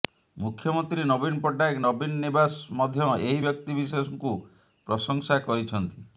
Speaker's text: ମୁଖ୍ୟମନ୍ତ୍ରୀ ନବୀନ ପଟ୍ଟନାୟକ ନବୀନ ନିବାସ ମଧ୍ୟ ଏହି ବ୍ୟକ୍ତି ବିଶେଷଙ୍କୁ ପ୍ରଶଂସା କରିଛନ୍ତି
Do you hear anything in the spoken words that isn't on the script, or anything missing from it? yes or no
no